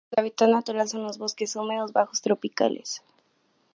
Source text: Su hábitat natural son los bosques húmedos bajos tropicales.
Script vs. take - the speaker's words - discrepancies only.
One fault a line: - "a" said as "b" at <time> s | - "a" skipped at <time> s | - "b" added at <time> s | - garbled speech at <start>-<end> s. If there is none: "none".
none